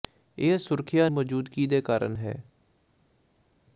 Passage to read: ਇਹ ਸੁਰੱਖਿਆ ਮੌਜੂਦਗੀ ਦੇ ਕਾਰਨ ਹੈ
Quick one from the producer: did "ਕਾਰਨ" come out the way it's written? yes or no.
yes